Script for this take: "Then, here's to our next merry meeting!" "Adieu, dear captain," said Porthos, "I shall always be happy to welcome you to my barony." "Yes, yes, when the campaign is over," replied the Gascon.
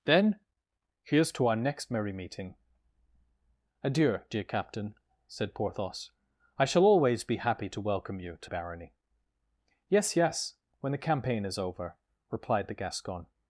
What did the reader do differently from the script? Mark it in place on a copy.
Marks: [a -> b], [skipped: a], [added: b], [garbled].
"Then, here's to our next merry meeting!" "Adieu, dear captain," said Porthos, "I shall always be happy to welcome you to [skipped: my] barony." "Yes, yes, when the campaign is over," replied the Gascon.